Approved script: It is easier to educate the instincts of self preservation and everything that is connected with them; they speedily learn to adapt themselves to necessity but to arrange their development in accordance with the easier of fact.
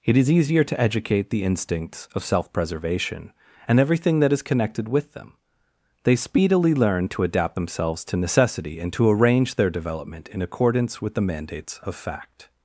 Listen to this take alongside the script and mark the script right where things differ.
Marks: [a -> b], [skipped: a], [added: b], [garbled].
It is easier to educate the instincts of self preservation and everything that is connected with them; they speedily learn to adapt themselves to necessity [but -> and] to arrange their development in accordance with the [easier -> mandates] of fact.